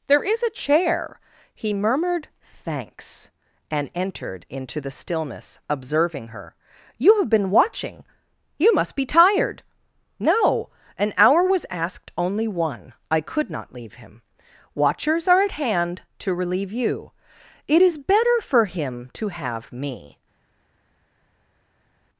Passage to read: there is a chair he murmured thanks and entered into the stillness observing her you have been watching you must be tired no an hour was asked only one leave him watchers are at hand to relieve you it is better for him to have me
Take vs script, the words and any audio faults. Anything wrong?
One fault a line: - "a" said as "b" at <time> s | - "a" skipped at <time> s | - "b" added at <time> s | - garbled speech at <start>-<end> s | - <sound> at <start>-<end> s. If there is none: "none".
- "i could not" added at 13.1 s